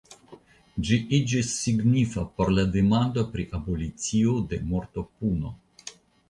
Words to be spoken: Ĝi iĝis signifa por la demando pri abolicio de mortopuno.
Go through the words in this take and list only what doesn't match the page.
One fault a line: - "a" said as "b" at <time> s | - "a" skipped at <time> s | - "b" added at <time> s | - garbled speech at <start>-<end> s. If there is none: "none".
none